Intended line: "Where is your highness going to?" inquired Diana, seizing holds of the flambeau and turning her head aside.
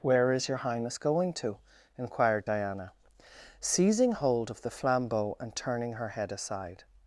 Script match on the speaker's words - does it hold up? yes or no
no